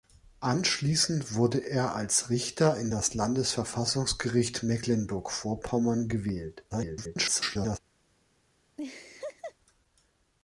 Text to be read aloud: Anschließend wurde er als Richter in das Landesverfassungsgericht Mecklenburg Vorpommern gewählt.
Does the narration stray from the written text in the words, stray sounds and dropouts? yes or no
yes